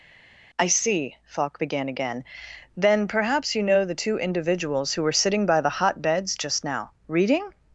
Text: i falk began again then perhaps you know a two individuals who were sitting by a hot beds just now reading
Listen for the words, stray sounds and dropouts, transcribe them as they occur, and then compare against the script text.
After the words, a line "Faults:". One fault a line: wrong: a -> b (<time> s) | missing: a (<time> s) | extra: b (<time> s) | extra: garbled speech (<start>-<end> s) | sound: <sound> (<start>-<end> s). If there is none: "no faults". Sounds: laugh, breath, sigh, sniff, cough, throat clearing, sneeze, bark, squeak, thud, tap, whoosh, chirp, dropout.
i see falk began again then perhaps you know the two individuals who were sitting by the hot beds just now reading
Faults:
extra: see (0.7 s)
wrong: a -> the (3.8 s)
wrong: a -> the (5.6 s)